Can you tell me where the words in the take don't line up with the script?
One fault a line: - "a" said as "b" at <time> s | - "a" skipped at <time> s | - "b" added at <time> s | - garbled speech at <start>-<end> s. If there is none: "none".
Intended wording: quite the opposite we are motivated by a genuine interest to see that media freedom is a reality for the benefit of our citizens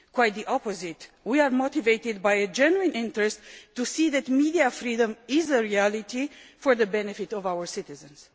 none